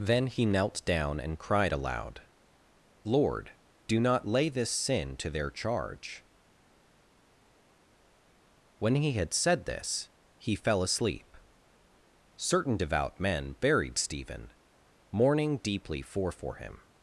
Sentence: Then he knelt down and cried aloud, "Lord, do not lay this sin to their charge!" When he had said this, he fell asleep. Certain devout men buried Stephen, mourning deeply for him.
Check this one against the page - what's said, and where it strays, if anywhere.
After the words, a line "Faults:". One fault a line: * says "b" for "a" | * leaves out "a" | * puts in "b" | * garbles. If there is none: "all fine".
Then he knelt down and cried aloud, "Lord, do not lay this sin to their charge!" When he had said this, he fell asleep. Certain devout men buried Stephen, mourning deeply for for him.
Faults:
* puts in "for"